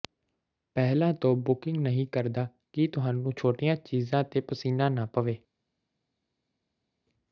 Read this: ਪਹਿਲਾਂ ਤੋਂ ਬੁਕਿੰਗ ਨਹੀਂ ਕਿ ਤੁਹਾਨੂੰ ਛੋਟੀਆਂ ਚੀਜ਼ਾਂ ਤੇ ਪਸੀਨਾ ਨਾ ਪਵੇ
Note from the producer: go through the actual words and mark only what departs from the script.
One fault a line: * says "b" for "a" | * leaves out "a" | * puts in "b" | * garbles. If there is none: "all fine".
* puts in "ਕਰਦਾ"